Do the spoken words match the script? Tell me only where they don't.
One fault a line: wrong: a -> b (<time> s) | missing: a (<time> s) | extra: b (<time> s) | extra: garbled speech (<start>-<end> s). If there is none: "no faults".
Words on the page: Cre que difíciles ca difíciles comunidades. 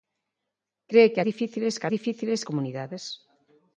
no faults